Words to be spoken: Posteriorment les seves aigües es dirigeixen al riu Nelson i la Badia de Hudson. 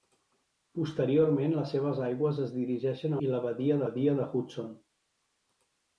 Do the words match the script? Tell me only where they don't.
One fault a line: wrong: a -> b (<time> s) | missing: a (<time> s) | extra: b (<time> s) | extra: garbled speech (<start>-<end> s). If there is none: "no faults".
missing: al riu Nelson (3.1 s)
extra: Badia (3.9 s)